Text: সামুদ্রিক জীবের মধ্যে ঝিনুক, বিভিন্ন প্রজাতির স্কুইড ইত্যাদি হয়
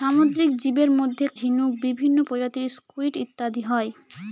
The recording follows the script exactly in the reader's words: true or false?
true